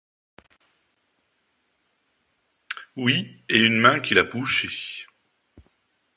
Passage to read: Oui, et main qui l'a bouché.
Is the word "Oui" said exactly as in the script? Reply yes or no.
yes